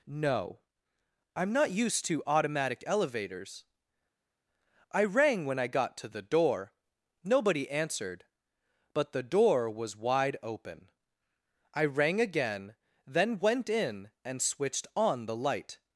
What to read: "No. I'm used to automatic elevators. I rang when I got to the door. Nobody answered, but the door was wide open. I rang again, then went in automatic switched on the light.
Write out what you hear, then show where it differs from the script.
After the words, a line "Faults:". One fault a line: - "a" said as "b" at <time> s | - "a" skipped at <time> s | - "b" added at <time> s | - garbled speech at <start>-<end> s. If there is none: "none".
"No. I'm not used to automatic elevators. I rang when I got to the door. Nobody answered, but the door was wide open. I rang again, then went in and switched on the light.
Faults:
- "not" added at 1.5 s
- "automatic" said as "and" at 14.2 s